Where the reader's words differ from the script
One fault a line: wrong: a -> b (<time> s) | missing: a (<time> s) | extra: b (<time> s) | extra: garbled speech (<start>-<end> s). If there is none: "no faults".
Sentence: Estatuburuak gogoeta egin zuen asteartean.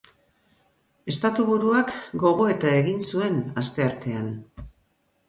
no faults